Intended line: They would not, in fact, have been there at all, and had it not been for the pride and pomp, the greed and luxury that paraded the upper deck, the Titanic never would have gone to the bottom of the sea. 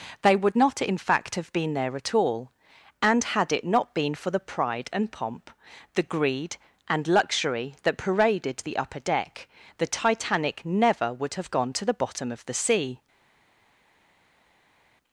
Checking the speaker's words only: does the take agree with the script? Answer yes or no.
yes